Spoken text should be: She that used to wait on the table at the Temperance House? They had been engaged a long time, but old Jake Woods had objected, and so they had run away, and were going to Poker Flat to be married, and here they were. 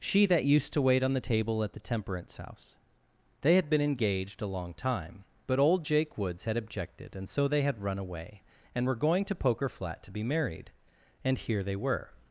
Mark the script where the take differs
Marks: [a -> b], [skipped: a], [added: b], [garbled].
She that used to wait on the table at the Temperance House? They had been engaged a long time, but old Jake Woods had objected, and so they had run away, and were going to Poker Flat to be married, and here they were.